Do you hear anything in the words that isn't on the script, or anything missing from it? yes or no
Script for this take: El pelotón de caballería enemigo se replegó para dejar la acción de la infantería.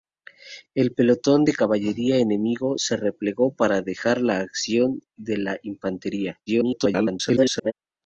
yes